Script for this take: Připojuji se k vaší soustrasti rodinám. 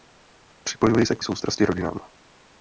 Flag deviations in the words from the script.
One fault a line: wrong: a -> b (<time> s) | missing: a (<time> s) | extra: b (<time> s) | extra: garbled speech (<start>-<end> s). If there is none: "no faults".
missing: vaší (1.2 s)